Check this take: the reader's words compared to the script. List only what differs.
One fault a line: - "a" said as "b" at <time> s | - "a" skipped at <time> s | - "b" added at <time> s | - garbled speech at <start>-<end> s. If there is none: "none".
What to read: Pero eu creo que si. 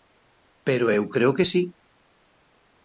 none